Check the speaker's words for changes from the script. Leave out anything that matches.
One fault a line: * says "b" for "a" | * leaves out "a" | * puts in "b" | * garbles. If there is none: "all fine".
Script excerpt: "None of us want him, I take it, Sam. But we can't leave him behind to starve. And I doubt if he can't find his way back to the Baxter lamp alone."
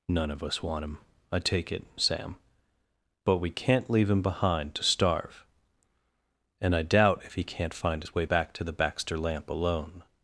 all fine